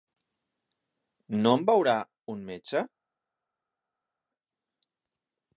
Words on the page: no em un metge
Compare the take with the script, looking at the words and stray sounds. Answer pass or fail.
fail